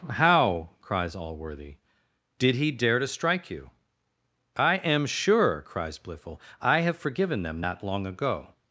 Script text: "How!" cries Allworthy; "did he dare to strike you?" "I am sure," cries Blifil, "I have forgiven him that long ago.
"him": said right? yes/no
no